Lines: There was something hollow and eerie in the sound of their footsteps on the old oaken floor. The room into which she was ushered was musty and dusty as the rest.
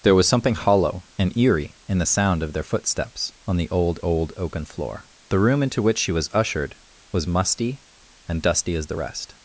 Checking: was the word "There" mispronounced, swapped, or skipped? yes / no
no